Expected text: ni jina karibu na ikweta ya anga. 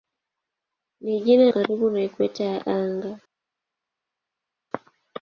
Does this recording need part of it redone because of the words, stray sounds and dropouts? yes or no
no